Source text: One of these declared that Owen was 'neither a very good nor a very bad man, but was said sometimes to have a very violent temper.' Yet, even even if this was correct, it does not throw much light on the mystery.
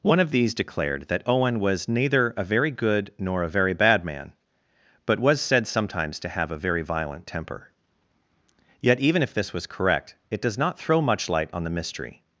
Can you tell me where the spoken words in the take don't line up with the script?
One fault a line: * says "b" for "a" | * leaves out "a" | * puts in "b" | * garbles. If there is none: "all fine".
* leaves out "even"